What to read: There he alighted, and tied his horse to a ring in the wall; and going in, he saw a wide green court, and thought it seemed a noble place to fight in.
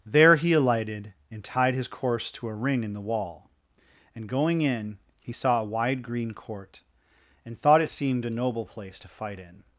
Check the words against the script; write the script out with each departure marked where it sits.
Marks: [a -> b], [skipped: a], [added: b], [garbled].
There he alighted, and tied his [horse -> course] to a ring in the wall; and going in, he saw a wide green court, and thought it seemed a noble place to fight in.